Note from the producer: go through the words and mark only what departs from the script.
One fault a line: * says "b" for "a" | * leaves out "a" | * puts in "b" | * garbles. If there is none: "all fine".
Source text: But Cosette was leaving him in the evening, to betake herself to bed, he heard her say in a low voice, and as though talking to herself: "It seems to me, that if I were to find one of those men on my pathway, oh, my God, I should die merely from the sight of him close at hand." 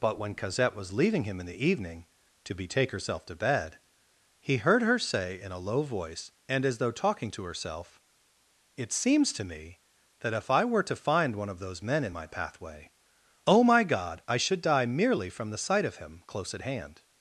* puts in "when"
* says "in" for "on"